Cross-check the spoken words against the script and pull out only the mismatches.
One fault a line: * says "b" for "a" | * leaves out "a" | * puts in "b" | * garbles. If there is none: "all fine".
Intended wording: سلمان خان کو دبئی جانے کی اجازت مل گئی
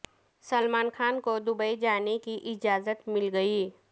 all fine